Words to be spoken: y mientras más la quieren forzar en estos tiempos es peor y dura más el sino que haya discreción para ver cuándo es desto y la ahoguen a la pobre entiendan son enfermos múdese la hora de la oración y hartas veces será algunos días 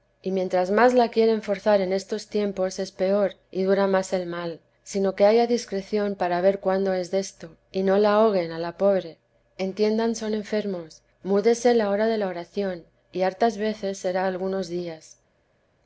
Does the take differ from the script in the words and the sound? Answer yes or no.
yes